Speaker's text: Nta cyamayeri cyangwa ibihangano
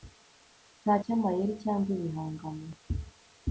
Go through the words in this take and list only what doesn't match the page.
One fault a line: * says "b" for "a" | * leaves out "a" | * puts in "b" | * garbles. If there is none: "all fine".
all fine